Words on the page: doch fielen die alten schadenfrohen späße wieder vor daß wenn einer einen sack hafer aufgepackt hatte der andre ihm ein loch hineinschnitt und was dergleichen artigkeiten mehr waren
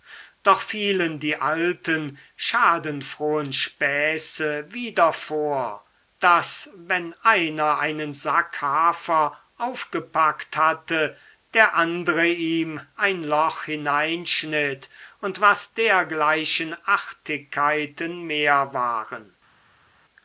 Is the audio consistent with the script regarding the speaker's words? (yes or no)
yes